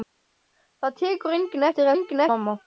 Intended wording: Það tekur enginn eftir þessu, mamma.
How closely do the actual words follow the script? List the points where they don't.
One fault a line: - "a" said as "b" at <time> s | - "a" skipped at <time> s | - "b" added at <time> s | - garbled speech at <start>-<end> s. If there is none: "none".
- "þessu" said as "enginn" at 2.0 s